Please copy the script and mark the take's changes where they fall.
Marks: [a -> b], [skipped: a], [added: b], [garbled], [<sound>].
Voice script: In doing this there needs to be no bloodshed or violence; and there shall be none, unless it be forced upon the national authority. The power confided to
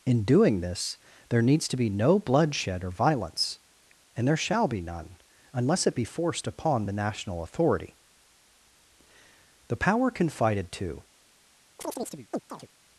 In doing this there needs to be no bloodshed or violence; and there shall be none, unless it be forced upon the national authority. The power confided to [chirp]